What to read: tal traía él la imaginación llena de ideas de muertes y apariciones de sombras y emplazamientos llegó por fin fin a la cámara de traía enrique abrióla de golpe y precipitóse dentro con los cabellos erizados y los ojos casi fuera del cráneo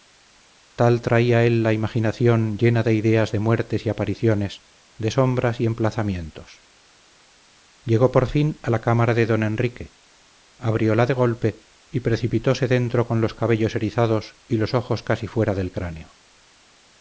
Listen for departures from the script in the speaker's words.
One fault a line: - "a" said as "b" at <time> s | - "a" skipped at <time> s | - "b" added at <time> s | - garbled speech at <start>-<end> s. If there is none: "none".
- "fin" skipped at 8.6 s
- "traía" said as "don" at 9.3 s